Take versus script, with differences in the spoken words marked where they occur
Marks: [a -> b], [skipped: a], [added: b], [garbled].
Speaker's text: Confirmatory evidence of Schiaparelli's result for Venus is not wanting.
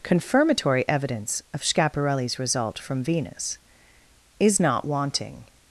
Confirmatory evidence of Schiaparelli's result [for -> from] Venus is not wanting.